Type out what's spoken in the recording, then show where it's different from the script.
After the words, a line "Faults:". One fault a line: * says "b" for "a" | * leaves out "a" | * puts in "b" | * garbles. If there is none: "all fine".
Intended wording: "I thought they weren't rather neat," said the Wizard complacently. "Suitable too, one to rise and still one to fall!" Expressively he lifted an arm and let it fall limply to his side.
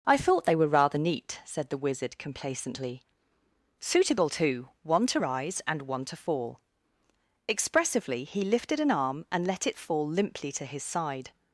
"I thought they were rather neat," said the Wizard complacently. "Suitable too, one to rise and one to fall!" Expressively he lifted an arm and let it fall limply to his side.
Faults:
* says "were" for "weren't"
* leaves out "still"